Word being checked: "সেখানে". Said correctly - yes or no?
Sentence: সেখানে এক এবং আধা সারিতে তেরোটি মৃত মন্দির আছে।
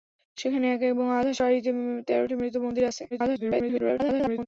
yes